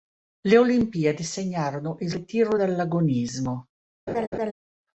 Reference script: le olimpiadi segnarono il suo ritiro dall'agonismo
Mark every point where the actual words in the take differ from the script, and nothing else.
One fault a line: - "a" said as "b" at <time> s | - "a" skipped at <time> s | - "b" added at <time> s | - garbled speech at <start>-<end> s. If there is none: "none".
- "suo" skipped at 2.1 s